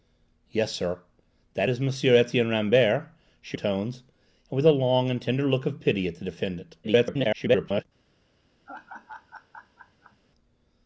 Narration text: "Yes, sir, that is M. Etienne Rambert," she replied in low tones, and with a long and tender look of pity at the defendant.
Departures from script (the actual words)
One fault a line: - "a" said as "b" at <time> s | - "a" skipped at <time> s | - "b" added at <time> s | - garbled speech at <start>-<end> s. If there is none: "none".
- "replied in low" skipped at 3.6 s
- garbled speech at 6.8-7.8 s